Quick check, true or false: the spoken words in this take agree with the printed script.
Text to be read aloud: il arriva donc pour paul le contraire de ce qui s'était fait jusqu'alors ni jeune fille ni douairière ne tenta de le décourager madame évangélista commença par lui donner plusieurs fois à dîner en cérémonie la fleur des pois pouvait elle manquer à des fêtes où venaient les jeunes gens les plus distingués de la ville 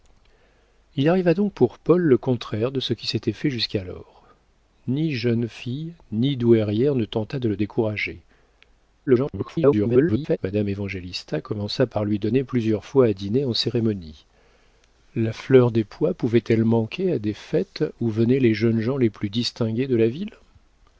false